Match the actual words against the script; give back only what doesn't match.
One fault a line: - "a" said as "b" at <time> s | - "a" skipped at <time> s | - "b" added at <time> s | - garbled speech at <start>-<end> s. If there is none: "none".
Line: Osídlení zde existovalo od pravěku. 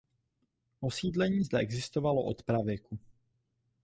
none